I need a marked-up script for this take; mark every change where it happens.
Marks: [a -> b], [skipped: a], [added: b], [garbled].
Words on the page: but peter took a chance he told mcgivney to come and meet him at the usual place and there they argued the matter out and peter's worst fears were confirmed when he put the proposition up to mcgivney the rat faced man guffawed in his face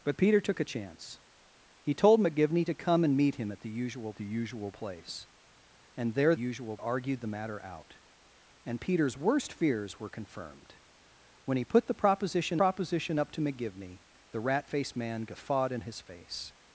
but peter took a chance he told mcgivney to come and meet him at the usual [added: the usual] place and there [they -> usual] argued the matter out and peter's worst fears were confirmed when he put the proposition [added: proposition] up to mcgivney the rat faced man guffawed in his face